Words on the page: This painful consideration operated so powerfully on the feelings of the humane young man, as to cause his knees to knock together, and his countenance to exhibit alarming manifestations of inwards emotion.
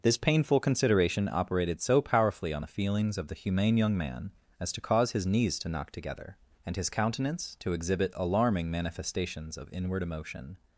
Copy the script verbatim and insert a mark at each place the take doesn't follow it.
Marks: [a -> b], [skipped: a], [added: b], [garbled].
This painful consideration operated so powerfully on the feelings of the humane young man, as to cause his knees to knock together, and his countenance to exhibit alarming manifestations of [inwards -> inward] emotion.